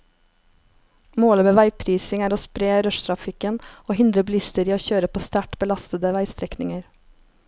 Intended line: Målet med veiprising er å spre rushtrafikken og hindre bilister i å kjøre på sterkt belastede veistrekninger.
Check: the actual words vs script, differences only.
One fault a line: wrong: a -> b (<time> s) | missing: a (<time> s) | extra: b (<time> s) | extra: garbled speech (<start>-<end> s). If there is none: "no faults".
no faults